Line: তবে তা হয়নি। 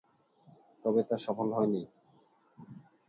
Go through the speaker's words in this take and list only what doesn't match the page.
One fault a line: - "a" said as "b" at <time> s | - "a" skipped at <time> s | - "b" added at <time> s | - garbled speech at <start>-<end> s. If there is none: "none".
- "সফল" added at 1.2 s